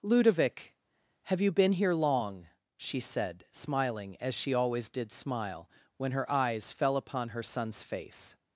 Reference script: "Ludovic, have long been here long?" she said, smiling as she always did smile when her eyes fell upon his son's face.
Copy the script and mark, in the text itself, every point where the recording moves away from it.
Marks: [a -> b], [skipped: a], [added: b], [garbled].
"Ludovic, have [long -> you] been here long?" she said, smiling as she always did smile when her eyes fell upon [his -> her] son's face.